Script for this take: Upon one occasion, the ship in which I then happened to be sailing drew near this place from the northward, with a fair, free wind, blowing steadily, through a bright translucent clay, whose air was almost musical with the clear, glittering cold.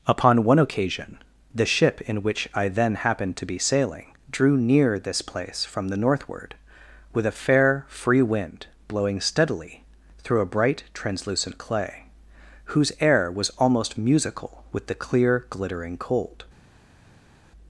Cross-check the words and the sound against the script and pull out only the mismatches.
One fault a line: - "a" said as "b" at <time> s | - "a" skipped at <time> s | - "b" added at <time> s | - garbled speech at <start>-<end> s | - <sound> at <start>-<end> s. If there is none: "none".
none